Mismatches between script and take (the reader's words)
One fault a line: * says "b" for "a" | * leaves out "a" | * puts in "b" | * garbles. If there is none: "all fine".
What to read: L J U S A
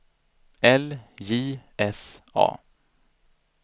* leaves out "U"